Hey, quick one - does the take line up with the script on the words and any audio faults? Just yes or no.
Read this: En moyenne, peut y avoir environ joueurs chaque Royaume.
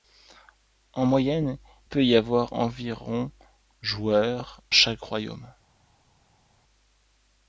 yes